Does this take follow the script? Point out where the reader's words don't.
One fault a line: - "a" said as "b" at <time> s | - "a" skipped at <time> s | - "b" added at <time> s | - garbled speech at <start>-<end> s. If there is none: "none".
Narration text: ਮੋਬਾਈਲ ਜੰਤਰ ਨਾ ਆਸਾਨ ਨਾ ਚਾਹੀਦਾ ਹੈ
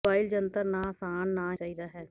none